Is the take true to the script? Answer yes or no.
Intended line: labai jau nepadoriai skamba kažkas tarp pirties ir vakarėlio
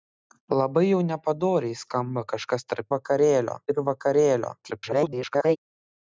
no